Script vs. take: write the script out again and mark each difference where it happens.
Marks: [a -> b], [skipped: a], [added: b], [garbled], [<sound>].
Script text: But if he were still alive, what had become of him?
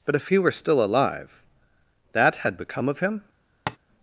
But if he were still alive, [what -> that] had become of him? [tap]